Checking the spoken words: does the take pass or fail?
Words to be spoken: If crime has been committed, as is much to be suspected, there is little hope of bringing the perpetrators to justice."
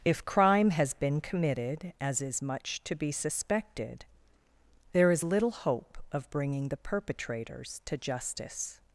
pass